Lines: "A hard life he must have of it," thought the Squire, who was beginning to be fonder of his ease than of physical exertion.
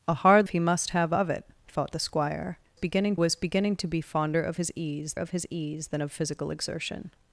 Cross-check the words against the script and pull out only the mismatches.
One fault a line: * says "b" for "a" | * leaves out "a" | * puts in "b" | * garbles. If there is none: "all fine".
* leaves out "life"
* says "beginning" for "who"
* puts in "of his ease"